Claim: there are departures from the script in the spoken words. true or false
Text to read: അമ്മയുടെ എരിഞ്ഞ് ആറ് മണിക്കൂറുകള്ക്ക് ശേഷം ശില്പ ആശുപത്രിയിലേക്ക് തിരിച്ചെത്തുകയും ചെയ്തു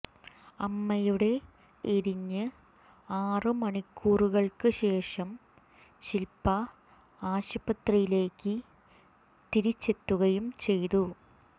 false